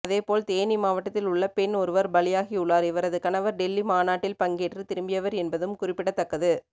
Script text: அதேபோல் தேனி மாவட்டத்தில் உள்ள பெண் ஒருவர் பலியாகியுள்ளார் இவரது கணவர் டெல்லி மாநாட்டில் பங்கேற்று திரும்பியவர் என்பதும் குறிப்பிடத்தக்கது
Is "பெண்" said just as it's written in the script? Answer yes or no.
yes